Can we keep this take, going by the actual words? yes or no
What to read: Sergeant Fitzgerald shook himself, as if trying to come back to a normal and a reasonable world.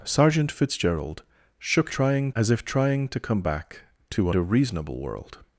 no